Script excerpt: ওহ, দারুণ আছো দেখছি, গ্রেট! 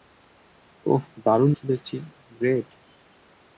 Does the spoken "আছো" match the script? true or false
true